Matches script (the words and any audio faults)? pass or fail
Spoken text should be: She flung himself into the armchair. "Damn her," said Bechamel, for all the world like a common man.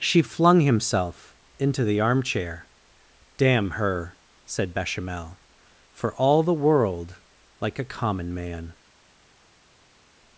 pass